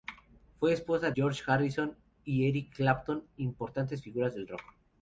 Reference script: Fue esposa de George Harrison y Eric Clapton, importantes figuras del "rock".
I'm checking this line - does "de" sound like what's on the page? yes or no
no